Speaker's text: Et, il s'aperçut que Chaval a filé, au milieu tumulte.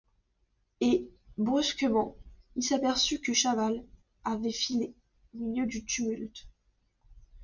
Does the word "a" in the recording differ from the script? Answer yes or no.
yes